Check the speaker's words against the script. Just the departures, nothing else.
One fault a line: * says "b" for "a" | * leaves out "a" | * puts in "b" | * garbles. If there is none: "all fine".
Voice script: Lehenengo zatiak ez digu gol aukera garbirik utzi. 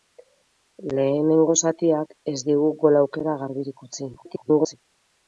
* garbles